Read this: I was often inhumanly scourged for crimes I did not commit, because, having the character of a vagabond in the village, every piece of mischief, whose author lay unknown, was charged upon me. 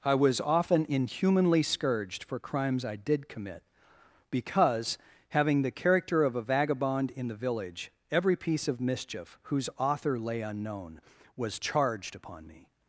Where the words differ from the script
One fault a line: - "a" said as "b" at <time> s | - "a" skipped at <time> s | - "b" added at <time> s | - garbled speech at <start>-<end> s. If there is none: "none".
- "not" skipped at 3.3 s